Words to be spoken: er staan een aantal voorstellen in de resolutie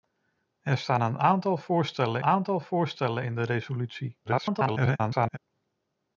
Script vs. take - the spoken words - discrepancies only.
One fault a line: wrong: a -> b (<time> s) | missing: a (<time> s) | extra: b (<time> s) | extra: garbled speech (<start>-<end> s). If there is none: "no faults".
extra: aantal voorstellen (2.2 s)
extra: garbled speech (4.2-5.4 s)